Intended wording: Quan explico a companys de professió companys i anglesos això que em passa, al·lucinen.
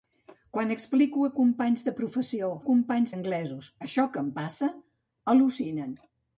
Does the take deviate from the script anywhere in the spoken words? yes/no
no